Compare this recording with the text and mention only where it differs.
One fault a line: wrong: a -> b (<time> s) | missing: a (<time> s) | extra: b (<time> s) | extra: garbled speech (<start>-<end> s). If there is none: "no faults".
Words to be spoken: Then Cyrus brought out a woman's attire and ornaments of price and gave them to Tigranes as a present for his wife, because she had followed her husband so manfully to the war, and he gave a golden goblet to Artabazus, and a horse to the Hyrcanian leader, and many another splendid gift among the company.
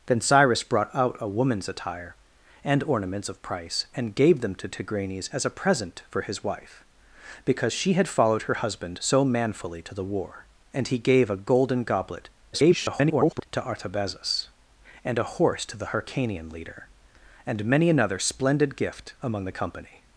extra: garbled speech (12.5-13.5 s)